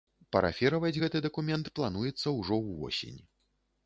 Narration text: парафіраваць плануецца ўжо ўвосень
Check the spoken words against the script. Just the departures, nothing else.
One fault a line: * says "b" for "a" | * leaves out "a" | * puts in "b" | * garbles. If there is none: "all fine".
* puts in "гэты дакумент"